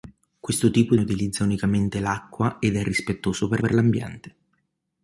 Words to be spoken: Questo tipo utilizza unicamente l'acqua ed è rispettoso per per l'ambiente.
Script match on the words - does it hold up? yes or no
yes